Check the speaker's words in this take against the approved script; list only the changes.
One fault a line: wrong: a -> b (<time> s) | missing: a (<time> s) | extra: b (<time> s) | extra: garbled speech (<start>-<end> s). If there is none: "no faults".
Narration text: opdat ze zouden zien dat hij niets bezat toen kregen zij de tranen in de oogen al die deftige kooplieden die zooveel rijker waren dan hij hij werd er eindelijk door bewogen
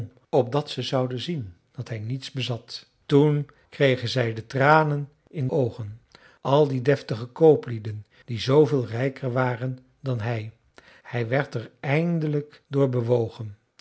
missing: de (5.5 s)